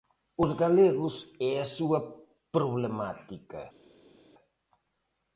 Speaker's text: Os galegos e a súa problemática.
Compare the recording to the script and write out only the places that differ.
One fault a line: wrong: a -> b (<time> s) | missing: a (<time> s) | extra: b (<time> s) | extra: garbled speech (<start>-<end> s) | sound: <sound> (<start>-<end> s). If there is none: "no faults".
no faults